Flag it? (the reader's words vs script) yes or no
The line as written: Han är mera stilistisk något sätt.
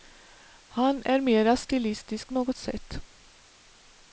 no